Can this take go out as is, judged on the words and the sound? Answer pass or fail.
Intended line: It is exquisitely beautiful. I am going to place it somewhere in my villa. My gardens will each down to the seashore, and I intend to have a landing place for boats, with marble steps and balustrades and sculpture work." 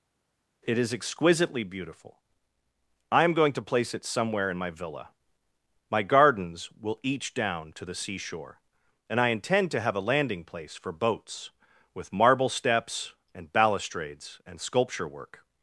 pass